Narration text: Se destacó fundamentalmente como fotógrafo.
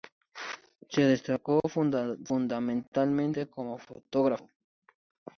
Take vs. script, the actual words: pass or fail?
pass